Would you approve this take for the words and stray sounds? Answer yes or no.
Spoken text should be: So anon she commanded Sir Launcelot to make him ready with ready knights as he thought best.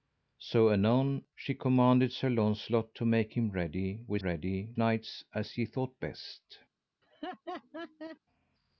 no